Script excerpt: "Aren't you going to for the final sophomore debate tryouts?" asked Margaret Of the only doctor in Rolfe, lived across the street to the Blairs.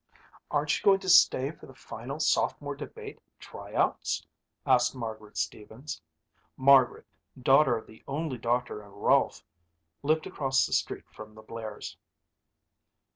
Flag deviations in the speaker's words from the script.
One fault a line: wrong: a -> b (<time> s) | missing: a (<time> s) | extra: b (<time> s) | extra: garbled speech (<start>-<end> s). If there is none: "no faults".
extra: stay (1.1 s)
extra: Stevens Margaret daughter (5.4 s)
wrong: to -> from (11.1 s)